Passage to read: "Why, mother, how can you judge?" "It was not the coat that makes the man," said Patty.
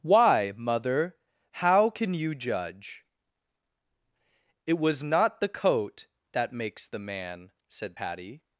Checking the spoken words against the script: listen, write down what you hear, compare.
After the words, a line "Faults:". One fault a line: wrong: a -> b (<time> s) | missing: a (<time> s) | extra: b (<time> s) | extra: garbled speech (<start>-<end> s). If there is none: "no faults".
"Why, mother, how can you judge?" "It was not the coat that makes the man," said Patty.
Faults:
no faults